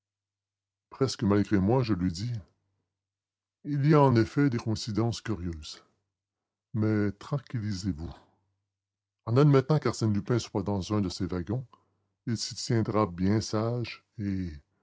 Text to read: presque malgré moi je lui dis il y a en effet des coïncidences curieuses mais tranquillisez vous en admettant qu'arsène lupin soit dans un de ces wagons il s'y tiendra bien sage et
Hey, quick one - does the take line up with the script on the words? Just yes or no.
yes